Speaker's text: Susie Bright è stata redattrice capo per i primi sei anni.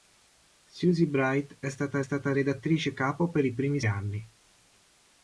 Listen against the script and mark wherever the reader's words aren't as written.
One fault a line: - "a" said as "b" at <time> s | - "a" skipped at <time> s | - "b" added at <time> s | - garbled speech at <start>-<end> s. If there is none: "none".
- "stata" added at 2.0 s
- "sei" skipped at 3.8 s